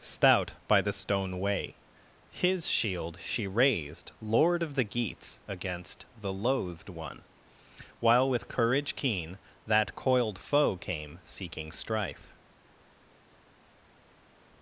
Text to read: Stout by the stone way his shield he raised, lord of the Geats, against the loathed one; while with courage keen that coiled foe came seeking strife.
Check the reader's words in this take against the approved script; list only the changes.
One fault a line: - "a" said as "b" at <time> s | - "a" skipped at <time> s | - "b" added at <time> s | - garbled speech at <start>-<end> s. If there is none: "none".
- "he" said as "she" at 3.2 s